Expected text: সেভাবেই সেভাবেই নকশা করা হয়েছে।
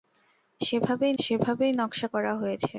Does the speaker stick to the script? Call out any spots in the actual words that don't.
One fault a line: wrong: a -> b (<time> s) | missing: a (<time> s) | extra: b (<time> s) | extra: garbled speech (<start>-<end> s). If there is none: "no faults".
no faults